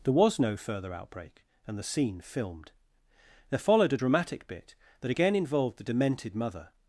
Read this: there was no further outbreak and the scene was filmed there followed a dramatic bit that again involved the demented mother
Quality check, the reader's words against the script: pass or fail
fail